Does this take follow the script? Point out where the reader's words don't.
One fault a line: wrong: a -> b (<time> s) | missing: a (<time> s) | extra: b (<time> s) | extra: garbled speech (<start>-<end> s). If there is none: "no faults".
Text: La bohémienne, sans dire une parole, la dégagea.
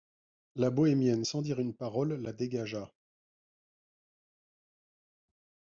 no faults